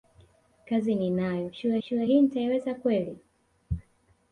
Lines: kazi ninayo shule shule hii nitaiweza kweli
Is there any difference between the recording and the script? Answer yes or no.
no